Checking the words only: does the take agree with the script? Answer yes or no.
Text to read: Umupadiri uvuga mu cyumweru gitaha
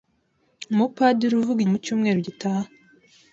yes